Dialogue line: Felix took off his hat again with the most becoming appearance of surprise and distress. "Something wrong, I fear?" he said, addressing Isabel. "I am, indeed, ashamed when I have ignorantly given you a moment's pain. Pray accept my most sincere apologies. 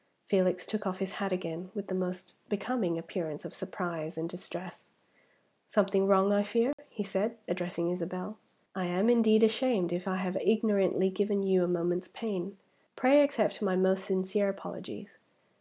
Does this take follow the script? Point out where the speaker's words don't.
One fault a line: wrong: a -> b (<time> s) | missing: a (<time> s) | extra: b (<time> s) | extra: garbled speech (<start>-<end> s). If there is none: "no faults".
wrong: when -> if (9.9 s)